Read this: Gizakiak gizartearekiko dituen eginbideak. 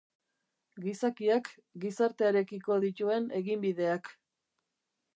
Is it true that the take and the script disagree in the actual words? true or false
false